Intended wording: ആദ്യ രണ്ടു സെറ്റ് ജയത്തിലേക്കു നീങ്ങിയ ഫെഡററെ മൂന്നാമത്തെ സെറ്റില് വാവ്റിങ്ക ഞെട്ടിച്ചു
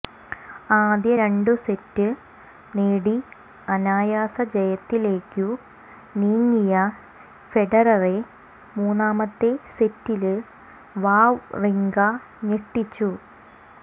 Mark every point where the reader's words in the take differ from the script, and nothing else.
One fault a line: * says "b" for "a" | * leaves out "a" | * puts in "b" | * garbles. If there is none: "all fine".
* puts in "നേടി അനായാസ"